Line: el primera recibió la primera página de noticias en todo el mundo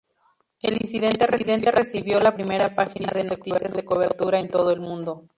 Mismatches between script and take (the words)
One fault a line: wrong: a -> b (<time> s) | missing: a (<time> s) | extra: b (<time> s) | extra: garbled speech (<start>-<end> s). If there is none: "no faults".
wrong: primera -> incidente (0.8 s)
extra: de cobertura (3.7 s)